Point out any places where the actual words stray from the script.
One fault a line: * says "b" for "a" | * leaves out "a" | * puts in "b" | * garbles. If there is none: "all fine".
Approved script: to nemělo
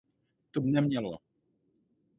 all fine